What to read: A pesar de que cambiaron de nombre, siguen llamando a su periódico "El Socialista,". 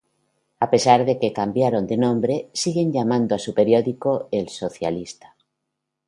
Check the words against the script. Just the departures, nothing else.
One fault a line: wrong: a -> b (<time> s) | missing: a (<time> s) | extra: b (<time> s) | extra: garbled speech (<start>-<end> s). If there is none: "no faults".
no faults